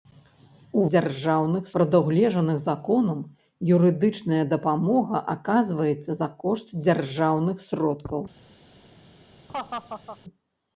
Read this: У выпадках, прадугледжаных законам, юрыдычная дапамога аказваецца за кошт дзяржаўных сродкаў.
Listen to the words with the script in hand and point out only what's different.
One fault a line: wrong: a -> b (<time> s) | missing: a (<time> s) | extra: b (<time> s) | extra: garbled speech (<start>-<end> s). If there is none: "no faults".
wrong: выпадках -> дзяржаўных (0.9 s)